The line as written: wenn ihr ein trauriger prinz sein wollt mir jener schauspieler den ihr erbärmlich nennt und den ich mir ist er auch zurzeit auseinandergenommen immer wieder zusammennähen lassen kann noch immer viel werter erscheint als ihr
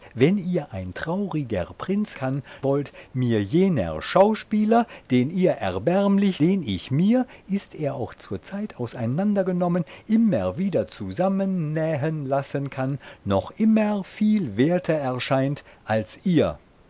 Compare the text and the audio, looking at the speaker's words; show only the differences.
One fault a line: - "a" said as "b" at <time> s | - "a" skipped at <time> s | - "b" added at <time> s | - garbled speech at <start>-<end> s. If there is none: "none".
- "sein" said as "kann" at 2.1 s
- "nennt und" skipped at 6.4 s